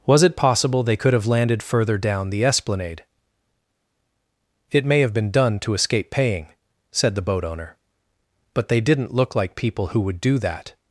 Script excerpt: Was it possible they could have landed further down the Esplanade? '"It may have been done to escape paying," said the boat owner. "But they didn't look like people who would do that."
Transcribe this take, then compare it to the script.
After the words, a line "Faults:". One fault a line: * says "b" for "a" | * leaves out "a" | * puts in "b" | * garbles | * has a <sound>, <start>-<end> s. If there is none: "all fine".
Was it possible they could have landed further down the Esplanade? '"It may have been done to escape paying," said the boat owner. "But they didn't look like people who would do that."
Faults:
all fine